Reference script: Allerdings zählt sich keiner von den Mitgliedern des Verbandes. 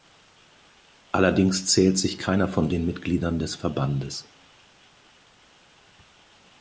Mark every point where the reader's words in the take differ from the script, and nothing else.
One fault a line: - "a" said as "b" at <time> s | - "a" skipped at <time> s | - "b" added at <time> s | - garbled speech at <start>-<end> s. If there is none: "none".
none